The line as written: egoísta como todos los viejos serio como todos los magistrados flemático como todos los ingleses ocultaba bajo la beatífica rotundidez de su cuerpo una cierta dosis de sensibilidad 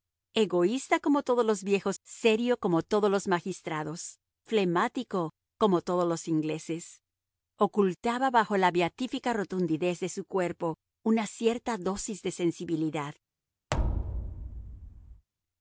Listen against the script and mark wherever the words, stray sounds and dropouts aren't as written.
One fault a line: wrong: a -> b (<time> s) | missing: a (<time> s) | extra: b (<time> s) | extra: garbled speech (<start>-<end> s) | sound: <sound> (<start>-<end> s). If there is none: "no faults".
sound: thud (13.7-15.3 s)